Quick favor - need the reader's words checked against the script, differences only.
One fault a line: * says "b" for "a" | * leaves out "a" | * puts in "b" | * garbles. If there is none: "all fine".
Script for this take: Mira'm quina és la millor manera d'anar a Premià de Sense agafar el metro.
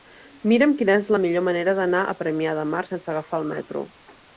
* puts in "Mar"